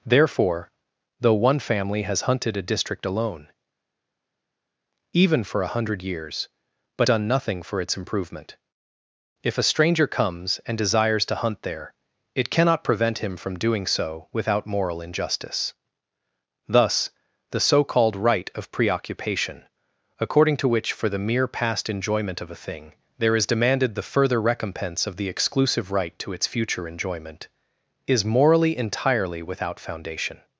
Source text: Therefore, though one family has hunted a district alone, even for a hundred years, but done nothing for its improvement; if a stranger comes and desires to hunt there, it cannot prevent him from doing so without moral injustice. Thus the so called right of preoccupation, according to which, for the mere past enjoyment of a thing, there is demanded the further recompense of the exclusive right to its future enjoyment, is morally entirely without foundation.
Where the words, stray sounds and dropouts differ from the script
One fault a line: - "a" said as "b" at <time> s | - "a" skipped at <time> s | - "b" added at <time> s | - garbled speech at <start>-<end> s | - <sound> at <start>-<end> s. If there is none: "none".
none